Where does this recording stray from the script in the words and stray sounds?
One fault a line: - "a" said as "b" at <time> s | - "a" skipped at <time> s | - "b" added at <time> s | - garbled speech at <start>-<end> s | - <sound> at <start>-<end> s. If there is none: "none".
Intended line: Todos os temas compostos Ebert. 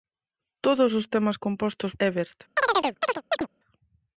- chirp at 2.6-3.5 s